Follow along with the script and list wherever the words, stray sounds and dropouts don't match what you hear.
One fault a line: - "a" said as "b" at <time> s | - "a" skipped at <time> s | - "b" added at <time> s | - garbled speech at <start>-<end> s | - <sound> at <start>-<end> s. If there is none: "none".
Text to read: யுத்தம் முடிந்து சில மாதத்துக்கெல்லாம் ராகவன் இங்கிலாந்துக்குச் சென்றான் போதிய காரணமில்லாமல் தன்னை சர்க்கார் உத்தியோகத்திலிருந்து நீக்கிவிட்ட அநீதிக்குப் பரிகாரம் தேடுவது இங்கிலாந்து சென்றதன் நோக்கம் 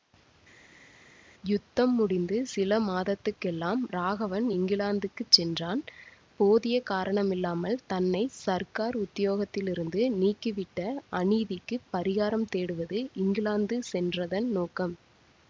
none